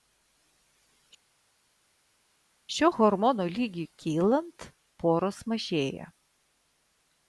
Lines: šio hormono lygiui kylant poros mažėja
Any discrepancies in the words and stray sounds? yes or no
no